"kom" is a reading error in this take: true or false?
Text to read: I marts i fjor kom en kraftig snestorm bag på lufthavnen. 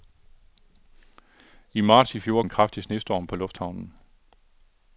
true